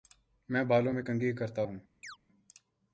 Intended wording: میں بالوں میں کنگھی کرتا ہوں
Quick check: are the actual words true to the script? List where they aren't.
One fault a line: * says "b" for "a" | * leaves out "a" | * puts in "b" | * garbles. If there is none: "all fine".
all fine